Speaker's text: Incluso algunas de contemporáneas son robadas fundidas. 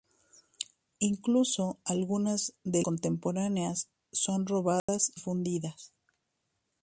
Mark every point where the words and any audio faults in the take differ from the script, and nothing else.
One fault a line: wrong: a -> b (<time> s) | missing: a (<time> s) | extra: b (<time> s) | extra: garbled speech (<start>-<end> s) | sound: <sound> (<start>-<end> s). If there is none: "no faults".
sound: dropout (4.8-4.9 s)